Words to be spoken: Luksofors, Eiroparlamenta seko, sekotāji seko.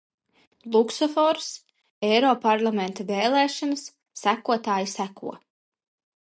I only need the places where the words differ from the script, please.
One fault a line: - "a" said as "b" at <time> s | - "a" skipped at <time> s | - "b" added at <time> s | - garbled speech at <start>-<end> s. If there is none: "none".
- "seko" said as "vēlēšanas" at 3.1 s